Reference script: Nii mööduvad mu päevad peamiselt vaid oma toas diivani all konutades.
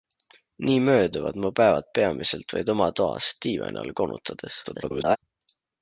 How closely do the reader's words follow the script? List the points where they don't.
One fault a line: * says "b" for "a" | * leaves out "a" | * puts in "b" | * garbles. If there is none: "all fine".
* garbles